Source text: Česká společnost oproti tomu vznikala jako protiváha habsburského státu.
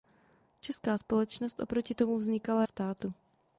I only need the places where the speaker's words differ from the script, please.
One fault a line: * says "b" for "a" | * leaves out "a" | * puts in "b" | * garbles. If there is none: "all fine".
* leaves out "jako protiváha habsburského"